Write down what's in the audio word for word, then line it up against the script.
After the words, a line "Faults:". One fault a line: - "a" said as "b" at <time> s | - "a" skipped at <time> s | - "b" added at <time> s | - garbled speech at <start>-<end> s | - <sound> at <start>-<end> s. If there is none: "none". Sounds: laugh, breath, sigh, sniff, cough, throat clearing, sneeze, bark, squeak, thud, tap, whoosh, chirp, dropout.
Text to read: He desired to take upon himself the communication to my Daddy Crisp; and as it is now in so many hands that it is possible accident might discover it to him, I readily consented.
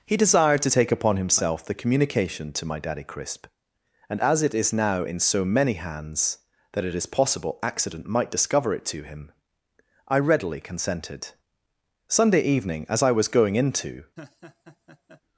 He desired to take upon himself the communication to my Daddy Crisp; and as it is now in so many hands that it is possible accident might discover it to him, I readily consented. Sunday evening, as I was going into
Faults:
- "Sunday evening as I was going into" added at 12.1 s
- laugh at 14.2-15.2 s